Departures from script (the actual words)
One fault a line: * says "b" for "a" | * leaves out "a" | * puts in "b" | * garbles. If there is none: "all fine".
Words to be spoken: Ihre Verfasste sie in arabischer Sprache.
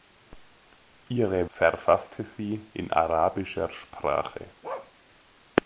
all fine